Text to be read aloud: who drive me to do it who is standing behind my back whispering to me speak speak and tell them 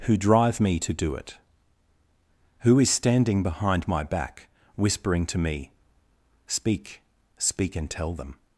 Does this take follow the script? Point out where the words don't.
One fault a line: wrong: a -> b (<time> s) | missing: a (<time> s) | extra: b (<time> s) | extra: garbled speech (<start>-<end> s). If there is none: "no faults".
no faults